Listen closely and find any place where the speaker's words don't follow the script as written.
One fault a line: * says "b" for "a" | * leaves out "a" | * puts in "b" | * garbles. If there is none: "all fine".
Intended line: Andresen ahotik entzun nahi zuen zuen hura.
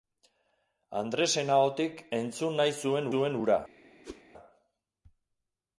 all fine